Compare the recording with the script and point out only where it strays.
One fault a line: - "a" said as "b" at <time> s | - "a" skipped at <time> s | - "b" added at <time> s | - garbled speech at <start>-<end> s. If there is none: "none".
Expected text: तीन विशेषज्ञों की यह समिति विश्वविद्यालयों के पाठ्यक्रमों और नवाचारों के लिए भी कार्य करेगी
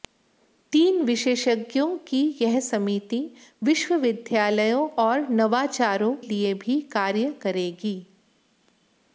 - "के पाठ्यक्रमों" skipped at 4.9 s
- "के" skipped at 6.2 s